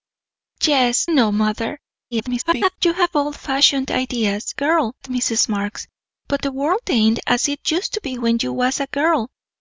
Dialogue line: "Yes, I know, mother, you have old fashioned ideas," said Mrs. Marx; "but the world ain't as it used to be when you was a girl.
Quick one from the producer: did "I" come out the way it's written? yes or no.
no